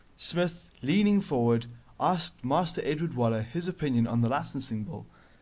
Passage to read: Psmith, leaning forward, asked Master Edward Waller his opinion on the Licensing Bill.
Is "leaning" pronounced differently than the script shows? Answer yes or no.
no